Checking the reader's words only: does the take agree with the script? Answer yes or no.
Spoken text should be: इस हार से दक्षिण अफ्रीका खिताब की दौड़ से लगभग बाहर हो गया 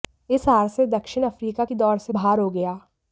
no